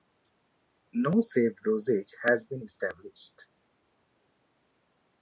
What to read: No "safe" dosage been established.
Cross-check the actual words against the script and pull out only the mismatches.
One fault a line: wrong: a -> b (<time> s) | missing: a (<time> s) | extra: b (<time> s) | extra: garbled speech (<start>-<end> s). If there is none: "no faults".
extra: has (2.2 s)